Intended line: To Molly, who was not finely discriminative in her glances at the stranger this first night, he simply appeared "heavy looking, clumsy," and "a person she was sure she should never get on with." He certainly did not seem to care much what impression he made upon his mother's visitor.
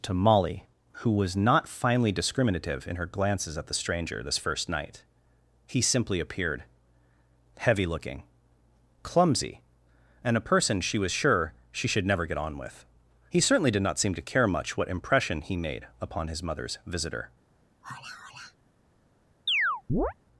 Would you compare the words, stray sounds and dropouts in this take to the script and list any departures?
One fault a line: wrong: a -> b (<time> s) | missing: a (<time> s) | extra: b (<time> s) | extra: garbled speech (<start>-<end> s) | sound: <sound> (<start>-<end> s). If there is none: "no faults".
sound: sigh (17.8-18.6 s)
sound: chirp (19.5-20.1 s)